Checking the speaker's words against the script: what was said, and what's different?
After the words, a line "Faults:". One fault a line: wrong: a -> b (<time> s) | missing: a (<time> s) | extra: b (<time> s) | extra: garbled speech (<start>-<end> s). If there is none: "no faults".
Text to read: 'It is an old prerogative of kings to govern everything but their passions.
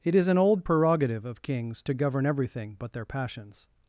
'It is an old prerogative of kings to govern everything but their passions.
Faults:
no faults